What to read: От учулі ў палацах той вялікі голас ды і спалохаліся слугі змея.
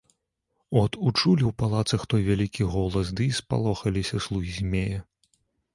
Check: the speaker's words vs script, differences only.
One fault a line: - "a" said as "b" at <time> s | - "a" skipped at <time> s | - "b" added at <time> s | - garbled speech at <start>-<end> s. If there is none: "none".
none